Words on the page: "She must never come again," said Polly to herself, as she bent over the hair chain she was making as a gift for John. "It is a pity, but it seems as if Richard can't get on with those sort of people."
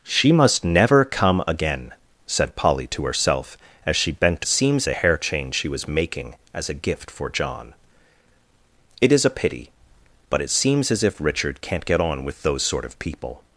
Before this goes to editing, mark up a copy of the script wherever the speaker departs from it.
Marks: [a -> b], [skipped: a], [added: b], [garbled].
"She must never come again," said Polly to herself, as she bent [over -> seems] the hair chain she was making as a gift for John. "It is a pity, but it seems as if Richard can't get on with those sort of people."